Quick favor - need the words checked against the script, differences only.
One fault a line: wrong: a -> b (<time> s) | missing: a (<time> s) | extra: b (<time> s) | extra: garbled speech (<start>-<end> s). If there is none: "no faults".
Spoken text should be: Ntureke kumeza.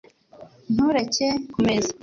no faults